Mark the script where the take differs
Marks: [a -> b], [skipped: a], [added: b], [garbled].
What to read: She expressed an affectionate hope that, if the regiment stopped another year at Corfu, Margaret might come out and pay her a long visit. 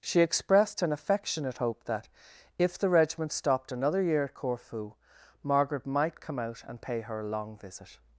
She expressed an affectionate hope that, if the regiment stopped another year at Corfu, Margaret might come out and pay her a long visit.